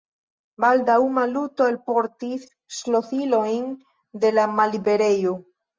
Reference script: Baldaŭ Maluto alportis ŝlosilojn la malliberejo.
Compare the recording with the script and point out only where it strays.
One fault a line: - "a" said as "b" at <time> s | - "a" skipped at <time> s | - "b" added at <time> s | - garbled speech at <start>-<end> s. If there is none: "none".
- "de" added at 4.2 s